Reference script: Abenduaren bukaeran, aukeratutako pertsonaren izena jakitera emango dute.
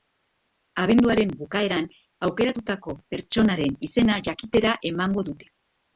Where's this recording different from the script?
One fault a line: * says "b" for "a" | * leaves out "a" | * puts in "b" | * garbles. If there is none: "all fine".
all fine